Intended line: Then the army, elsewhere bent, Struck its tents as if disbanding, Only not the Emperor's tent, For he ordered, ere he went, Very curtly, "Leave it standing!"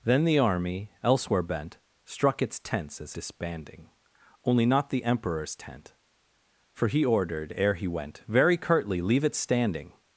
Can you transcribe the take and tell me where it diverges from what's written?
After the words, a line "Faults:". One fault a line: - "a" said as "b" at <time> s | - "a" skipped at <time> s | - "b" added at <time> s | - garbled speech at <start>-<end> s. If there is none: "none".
Then the army, elsewhere bent, Struck its tents as disbanding, Only not the Emperor's tent, For he ordered, ere he went, Very curtly, "Leave it standing!"
Faults:
- "if" skipped at 3.1 s